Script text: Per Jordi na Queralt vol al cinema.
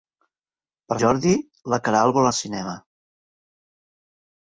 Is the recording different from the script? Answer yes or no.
no